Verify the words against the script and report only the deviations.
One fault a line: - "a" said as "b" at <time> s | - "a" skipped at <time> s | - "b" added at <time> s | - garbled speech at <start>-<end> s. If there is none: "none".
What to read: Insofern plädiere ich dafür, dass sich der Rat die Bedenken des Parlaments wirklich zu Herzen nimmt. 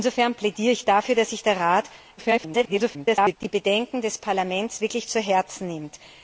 - garbled speech at 2.2-3.4 s